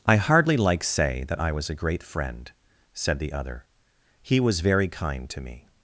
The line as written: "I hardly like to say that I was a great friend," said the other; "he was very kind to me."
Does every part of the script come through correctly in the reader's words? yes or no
no